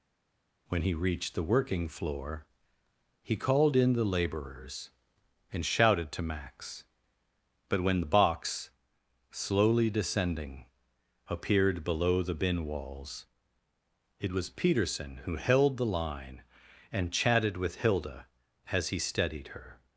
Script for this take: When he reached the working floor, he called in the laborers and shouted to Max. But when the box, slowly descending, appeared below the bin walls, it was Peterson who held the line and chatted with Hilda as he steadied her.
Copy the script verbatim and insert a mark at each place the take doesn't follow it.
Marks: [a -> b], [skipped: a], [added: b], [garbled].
When he reached the working floor, he called in the laborers and shouted to Max. But when the box, slowly descending, appeared below the bin walls, it was Peterson who held the line and chatted with Hilda as he steadied her.